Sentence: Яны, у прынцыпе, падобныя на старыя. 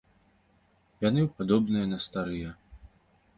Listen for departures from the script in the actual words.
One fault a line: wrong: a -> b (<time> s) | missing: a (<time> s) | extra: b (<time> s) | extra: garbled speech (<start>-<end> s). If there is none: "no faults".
missing: прынцыпе (1.3 s)